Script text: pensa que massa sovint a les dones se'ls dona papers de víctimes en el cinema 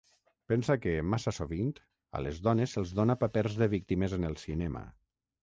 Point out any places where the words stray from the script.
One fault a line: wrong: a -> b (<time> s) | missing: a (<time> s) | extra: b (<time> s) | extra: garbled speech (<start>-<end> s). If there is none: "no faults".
no faults